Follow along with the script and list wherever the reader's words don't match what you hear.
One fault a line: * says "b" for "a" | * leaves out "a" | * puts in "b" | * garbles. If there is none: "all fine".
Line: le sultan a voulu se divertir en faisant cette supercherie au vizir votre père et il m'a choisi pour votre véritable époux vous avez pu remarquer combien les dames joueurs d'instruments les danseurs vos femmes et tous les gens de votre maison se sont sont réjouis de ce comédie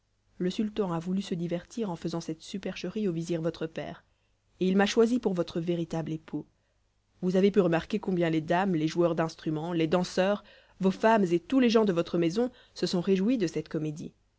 * puts in "les"
* leaves out "sont"
* says "cette" for "ce"